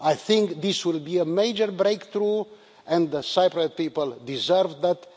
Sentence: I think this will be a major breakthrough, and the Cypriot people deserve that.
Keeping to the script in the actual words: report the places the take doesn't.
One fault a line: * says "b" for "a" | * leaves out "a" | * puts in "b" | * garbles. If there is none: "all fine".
all fine